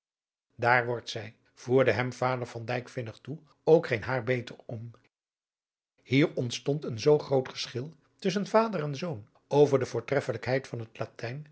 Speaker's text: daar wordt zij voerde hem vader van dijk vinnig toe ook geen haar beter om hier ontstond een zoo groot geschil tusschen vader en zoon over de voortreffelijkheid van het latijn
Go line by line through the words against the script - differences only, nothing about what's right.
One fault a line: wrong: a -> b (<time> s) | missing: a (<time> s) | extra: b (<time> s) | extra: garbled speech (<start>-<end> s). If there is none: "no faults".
no faults